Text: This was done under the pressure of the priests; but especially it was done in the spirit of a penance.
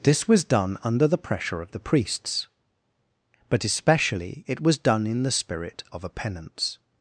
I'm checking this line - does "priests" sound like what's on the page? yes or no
yes